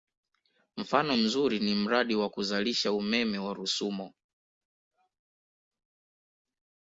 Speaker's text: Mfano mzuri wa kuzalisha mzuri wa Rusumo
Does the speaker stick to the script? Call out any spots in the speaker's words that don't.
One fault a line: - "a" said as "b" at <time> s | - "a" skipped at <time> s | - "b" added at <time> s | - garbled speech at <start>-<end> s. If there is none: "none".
- "ni mradi" added at 1.6 s
- "mzuri" said as "umeme" at 2.9 s